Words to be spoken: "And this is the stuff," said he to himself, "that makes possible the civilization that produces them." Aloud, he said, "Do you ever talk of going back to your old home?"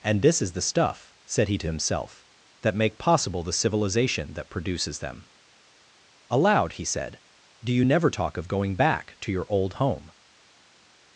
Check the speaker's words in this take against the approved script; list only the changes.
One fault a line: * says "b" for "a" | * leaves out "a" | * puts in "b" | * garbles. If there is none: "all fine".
* says "make" for "makes"
* says "never" for "ever"